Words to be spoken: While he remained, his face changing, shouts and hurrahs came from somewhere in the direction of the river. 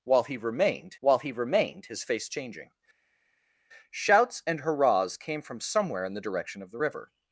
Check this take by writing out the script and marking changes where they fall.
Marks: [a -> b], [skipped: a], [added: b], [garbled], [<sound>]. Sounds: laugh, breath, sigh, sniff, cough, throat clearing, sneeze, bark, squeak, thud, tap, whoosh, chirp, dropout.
While he remained, [added: while he remained] his face changing, shouts and hurrahs came from somewhere in the direction of the river.